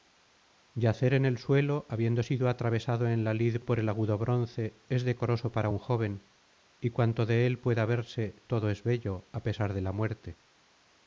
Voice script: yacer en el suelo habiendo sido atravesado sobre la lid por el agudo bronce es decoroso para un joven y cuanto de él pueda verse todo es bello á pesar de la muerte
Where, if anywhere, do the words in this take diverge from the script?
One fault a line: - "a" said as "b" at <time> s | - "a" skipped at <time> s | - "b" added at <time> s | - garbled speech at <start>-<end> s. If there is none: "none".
- "sobre" said as "en" at 3.1 s